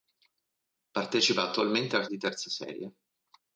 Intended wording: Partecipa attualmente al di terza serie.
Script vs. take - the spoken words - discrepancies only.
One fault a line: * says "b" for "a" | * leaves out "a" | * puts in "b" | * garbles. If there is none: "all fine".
all fine